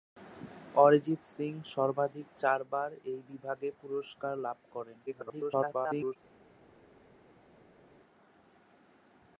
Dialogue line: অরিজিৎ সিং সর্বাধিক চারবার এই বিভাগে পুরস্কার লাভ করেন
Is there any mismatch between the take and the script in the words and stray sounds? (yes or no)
yes